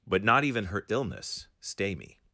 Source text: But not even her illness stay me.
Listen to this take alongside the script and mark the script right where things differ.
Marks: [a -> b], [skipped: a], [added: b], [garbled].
But not even her illness stay me.